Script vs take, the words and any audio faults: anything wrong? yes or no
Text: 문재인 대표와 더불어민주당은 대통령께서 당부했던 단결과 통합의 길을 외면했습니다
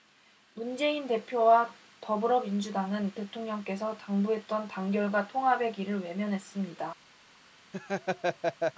yes